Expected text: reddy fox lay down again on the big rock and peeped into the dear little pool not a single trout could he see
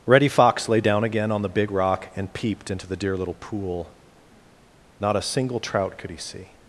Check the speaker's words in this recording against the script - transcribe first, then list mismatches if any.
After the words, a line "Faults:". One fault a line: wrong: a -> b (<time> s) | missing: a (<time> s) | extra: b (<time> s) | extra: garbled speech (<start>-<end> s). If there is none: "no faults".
reddy fox lay down again on the big rock and peeped into the dear little pool not a single trout could he see
Faults:
no faults